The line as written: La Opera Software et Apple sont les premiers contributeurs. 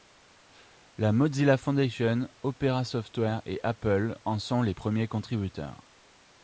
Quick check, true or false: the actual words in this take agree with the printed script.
false